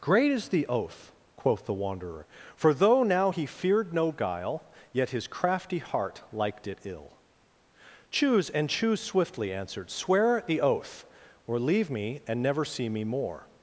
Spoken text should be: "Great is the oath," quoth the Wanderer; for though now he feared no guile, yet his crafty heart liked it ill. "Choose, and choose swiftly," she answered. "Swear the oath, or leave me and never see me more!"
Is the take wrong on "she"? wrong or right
wrong